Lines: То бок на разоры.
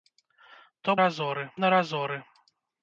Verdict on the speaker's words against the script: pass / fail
fail